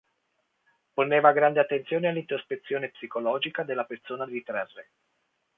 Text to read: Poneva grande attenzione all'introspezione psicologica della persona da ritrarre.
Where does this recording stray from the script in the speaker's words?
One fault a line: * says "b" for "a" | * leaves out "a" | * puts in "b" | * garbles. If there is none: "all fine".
* leaves out "da"